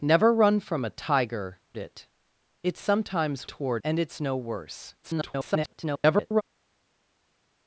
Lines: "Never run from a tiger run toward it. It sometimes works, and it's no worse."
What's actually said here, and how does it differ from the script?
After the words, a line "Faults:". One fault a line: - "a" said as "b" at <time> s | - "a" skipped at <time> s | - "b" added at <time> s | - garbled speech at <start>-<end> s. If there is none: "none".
"Never run from a tiger it. It sometimes toward, and it's no worse." [garbled]
Faults:
- "run toward" skipped at 1.6 s
- "works" said as "toward" at 3.4 s
- garbled speech at 5.0-6.4 s